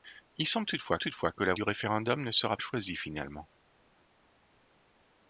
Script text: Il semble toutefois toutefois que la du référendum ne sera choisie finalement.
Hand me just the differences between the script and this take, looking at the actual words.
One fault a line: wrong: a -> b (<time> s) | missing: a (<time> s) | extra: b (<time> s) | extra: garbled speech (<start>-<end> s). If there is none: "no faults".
no faults